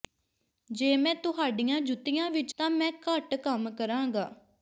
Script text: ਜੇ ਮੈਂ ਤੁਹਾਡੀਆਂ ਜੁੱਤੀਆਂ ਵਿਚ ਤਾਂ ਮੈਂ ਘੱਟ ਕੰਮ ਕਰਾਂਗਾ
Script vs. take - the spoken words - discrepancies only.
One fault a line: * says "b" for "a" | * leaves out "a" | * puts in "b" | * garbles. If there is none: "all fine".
all fine